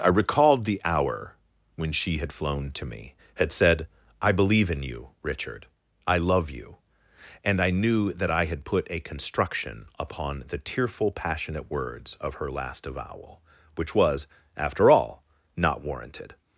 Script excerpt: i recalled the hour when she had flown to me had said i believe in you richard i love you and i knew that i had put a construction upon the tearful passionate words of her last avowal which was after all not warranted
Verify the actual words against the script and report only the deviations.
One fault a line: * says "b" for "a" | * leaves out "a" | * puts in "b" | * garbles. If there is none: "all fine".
all fine